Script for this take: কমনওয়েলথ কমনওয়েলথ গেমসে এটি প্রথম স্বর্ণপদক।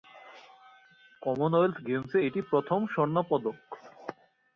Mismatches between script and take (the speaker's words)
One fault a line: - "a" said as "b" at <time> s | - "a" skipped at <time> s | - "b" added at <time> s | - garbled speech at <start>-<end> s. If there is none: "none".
- "কমনওয়েলথ" skipped at 1.8 s